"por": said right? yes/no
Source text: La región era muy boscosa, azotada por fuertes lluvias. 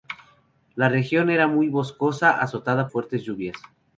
no